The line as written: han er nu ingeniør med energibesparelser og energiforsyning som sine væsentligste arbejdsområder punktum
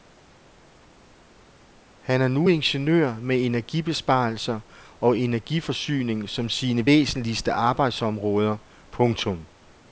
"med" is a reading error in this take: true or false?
false